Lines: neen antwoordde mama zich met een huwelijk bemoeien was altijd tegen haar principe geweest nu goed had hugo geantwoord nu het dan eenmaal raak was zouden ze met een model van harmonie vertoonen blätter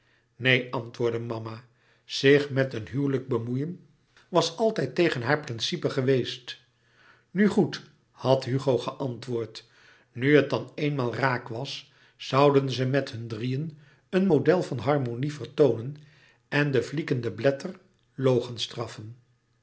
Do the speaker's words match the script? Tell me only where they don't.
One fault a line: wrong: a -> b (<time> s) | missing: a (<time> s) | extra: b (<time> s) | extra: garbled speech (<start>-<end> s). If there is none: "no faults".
extra: hun drieën (13.1 s)
extra: en de fliegende (16.5 s)